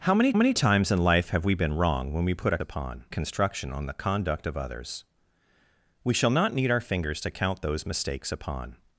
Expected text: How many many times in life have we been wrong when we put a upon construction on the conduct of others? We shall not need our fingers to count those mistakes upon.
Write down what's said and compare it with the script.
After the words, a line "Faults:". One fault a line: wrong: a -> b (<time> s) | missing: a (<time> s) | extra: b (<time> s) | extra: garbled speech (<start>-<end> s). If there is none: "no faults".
How many many times in life have we been wrong when we put a upon construction on the conduct of others? We shall not need our fingers to count those mistakes upon.
Faults:
no faults